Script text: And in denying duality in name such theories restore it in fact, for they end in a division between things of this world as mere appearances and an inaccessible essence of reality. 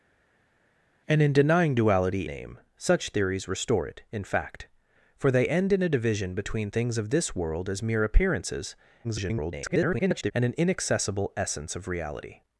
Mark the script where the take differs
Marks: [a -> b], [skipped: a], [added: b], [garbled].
And in denying duality [skipped: in] name such theories restore it in fact, for they end in a division between things of this world as mere appearances [garbled] and an inaccessible essence of reality.